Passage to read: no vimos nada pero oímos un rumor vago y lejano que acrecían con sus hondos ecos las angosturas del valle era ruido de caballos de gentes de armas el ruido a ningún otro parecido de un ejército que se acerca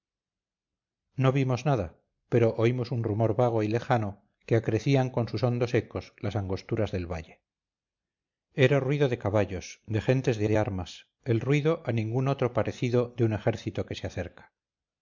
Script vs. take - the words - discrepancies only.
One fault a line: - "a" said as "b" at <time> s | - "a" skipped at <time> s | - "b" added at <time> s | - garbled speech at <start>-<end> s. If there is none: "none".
- "de" added at 10.5 s